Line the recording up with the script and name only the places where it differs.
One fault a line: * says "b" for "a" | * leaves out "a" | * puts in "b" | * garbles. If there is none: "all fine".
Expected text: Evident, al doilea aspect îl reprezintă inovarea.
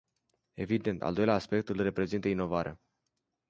all fine